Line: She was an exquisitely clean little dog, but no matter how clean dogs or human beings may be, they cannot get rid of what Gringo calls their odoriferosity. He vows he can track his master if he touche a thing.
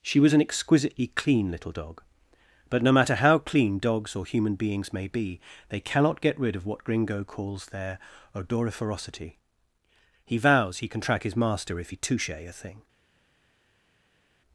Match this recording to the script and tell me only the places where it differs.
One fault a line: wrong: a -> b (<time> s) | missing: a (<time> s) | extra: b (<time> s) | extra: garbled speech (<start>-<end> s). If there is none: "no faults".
no faults